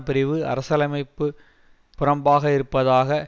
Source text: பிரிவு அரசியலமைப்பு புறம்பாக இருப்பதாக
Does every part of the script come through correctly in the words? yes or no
yes